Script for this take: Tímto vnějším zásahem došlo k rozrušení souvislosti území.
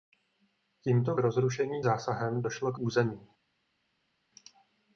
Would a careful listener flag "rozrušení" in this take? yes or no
yes